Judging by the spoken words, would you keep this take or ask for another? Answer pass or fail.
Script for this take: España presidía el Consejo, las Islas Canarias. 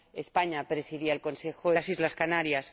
pass